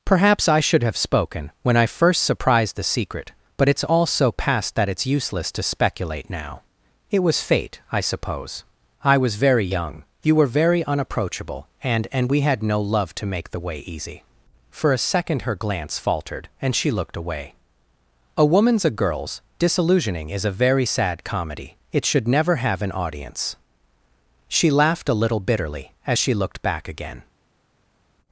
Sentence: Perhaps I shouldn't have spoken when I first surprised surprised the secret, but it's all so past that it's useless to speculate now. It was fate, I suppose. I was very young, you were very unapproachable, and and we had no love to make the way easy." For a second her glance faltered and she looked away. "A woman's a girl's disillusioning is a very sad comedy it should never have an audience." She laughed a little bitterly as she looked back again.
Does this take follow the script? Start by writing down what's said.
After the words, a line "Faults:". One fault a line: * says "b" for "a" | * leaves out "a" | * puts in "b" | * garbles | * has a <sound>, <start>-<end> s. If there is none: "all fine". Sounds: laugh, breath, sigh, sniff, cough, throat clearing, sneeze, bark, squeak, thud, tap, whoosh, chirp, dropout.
Perhaps I should have spoken when I first surprised the secret, but it's all so past that it's useless to speculate now. It was fate, I suppose. I was very young, you were very unapproachable, and and we had no love to make the way easy." For a second her glance faltered and she looked away. "A woman's a girl's disillusioning is a very sad comedy it should never have an audience." She laughed a little bitterly as she looked back again.
Faults:
* says "should" for "shouldn't"
* leaves out "surprised"